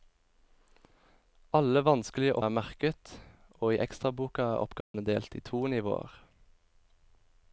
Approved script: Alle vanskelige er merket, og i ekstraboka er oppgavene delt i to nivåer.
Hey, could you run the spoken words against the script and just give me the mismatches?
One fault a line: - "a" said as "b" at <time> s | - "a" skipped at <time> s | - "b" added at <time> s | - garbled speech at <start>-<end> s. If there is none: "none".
none